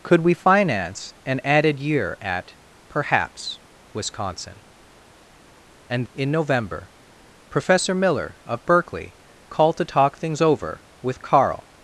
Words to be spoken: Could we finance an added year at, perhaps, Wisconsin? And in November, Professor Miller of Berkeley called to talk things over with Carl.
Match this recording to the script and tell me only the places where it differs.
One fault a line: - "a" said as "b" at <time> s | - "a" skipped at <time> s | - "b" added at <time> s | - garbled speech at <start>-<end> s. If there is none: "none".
none